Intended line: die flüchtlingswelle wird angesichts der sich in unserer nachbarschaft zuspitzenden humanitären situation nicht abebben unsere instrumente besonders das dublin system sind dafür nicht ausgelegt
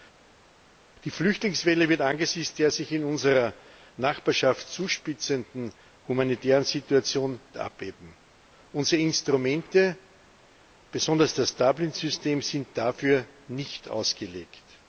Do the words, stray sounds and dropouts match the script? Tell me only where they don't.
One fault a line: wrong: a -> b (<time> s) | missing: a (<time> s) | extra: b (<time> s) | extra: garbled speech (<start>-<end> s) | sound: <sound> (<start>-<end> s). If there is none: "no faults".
missing: nicht (7.4 s)